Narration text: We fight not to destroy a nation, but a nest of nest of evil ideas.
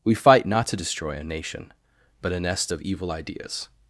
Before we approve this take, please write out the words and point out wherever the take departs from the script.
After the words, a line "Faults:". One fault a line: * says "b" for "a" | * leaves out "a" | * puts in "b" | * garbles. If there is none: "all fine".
We fight not to destroy a nation, but a nest of evil ideas.
Faults:
* leaves out "nest of"